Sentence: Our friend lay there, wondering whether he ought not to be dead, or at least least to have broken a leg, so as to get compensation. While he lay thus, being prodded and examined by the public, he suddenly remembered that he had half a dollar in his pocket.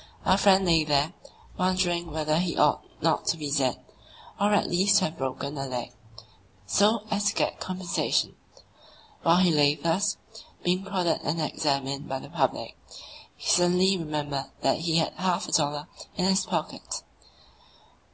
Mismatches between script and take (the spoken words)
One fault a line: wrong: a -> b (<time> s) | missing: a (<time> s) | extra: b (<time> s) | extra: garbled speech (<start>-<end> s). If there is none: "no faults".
missing: least (5.0 s)